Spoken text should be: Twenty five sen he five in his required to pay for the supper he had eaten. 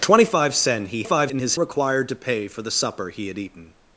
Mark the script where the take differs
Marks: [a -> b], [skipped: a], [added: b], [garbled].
Twenty five sen he five in his required to pay for the supper he had eaten.